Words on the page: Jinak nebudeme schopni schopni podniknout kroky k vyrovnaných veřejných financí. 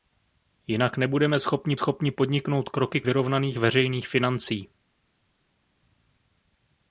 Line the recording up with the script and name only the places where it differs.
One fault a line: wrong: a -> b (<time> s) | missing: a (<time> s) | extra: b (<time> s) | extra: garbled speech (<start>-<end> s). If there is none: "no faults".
no faults